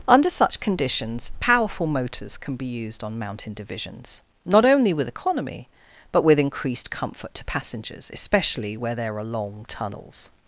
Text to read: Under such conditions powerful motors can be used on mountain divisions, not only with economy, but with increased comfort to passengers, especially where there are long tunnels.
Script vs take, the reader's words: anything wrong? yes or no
no